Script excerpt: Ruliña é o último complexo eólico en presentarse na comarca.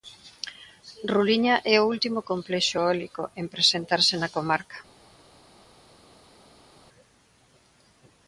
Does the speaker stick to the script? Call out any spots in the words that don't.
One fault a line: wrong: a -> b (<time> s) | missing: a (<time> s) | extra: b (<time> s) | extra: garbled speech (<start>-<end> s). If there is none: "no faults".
no faults